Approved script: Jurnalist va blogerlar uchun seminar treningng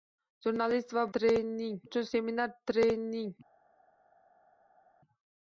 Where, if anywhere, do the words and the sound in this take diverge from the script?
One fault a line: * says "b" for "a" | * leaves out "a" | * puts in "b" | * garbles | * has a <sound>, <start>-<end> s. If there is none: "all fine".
* says "treningng" for "blogerlar"